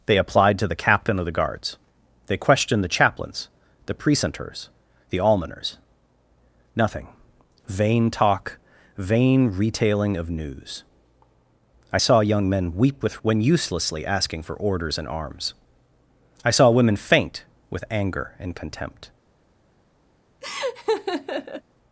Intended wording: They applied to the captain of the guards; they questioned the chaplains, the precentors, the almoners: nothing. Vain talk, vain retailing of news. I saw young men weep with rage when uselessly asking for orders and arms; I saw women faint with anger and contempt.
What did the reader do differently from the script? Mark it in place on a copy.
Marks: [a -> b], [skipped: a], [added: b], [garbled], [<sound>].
They applied to the captain of the guards; they questioned the chaplains, the precentors, the almoners: nothing. Vain talk, vain retailing of news. I saw young men weep with [skipped: rage] when uselessly asking for orders and arms; I saw women faint with anger and contempt. [laugh]